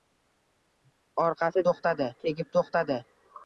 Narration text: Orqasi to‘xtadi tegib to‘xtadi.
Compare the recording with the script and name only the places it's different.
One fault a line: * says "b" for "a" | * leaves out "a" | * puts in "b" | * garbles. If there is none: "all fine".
all fine